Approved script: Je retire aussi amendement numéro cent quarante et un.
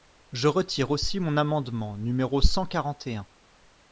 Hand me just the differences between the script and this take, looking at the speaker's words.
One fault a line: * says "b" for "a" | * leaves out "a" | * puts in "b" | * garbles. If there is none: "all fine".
* puts in "mon"